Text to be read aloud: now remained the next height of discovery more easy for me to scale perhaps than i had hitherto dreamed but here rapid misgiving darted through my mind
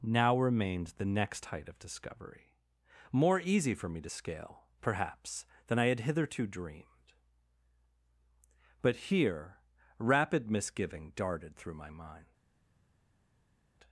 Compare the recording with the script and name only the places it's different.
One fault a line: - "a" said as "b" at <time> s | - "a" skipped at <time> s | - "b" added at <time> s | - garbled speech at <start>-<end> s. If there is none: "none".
none